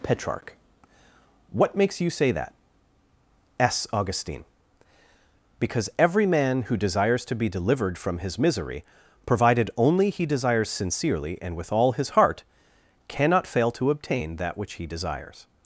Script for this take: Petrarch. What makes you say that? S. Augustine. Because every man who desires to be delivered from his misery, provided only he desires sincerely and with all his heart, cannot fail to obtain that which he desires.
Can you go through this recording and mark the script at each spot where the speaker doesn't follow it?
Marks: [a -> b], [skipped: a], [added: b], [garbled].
Petrarch. What makes you say that? S. Augustine. Because every man who desires to be delivered from his misery, provided only he desires sincerely and with all his heart, cannot fail to obtain that which he desires.